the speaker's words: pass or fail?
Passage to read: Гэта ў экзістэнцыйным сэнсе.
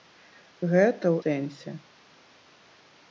fail